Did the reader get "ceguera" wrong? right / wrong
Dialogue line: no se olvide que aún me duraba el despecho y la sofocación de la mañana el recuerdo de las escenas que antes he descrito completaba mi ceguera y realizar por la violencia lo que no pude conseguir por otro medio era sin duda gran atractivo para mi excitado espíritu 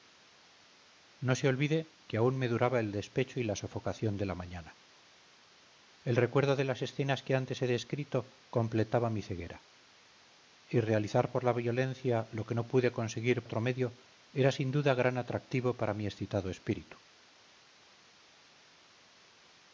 right